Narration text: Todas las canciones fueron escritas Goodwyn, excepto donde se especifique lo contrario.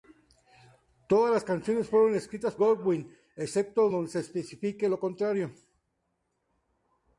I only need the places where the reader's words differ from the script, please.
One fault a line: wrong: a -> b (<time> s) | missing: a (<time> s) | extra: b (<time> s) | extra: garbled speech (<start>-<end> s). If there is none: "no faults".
no faults